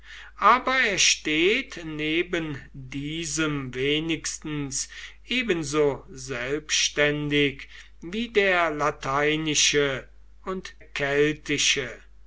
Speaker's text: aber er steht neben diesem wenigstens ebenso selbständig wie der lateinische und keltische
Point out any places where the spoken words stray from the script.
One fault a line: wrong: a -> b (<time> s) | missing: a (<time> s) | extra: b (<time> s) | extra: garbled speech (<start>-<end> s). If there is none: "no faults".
no faults